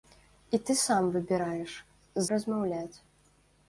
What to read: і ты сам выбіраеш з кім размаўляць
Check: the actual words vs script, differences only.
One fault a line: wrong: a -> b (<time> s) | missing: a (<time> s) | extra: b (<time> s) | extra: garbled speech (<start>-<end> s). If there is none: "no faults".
missing: з кім (1.8 s)